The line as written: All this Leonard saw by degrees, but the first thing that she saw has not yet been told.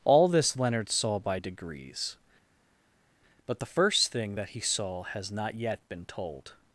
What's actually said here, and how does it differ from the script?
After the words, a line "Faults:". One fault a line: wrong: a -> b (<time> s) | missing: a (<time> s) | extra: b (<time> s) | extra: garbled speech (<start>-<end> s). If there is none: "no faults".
All this Leonard saw by degrees, but the first thing that he saw has not yet been told.
Faults:
wrong: she -> he (4.5 s)